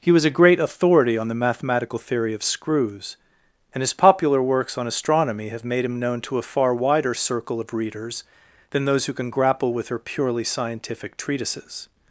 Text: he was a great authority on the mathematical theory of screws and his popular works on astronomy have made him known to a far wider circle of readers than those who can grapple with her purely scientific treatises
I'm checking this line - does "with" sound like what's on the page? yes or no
yes